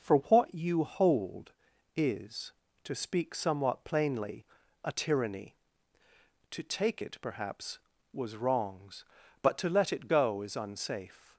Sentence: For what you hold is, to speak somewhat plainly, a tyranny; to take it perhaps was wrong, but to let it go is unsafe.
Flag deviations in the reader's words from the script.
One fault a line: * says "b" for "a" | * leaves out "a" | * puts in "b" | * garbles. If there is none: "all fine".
* says "wrongs" for "wrong"